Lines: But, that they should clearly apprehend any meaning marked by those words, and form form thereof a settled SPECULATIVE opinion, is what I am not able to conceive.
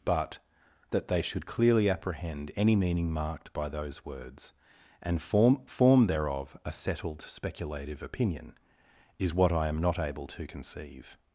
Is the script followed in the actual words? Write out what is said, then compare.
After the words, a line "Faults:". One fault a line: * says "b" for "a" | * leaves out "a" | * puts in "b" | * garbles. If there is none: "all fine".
But, that they should clearly apprehend any meaning marked by those words, and form form thereof a settled SPECULATIVE opinion, is what I am not able to conceive.
Faults:
all fine